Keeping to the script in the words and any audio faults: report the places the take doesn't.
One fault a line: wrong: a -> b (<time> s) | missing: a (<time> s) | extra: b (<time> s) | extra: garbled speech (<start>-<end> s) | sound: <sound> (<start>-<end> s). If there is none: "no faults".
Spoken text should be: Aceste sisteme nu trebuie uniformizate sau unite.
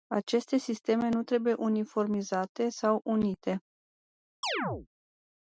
sound: chirp (4.4-4.9 s)